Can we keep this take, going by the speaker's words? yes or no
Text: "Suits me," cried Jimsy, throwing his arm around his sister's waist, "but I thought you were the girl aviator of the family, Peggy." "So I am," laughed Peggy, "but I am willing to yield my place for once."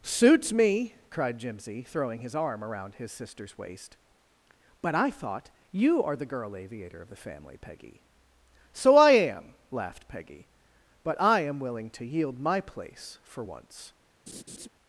no